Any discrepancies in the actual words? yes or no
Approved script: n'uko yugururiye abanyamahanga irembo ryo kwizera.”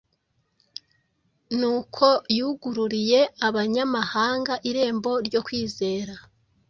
no